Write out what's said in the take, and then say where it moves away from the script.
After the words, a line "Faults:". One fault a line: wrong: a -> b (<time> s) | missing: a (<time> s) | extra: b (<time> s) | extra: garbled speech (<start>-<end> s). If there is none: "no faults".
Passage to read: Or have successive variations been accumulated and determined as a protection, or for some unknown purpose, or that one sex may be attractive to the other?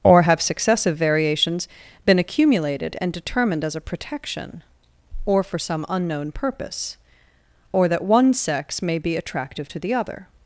Or have successive variations been accumulated and determined as a protection, or for some unknown purpose, or that one sex may be attractive to the other?
Faults:
no faults